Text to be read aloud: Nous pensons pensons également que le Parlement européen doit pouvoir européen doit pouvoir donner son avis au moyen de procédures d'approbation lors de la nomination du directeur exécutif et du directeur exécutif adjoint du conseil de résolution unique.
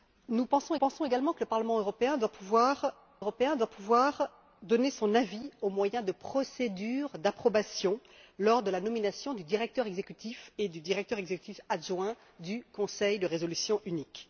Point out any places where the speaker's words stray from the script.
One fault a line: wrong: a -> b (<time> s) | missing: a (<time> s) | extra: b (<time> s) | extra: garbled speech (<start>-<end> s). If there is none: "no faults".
no faults